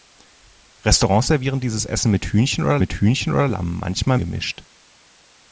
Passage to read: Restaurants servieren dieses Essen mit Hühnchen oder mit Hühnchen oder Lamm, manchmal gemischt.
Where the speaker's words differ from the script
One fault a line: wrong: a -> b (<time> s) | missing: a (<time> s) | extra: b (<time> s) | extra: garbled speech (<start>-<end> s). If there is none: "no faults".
no faults